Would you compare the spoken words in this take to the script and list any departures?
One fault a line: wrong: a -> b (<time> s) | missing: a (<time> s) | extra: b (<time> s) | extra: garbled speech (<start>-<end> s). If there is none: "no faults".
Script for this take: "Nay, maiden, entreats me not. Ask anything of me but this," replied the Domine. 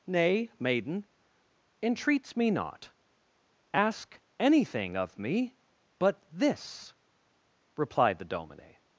no faults